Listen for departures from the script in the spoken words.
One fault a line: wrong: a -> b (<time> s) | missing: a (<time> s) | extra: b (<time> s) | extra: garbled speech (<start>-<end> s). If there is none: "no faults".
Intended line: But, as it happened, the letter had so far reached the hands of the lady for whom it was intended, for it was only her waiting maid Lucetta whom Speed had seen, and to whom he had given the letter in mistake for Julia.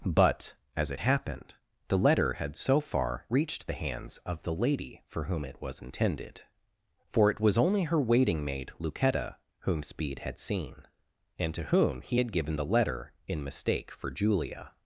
no faults